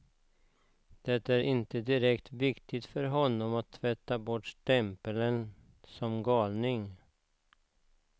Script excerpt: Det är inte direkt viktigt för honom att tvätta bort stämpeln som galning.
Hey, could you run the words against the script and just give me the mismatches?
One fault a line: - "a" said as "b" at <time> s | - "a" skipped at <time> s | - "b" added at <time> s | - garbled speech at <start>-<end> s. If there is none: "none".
none